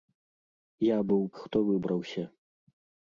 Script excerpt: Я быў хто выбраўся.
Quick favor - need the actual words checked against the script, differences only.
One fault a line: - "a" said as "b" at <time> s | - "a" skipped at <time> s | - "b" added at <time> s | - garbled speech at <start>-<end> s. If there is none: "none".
none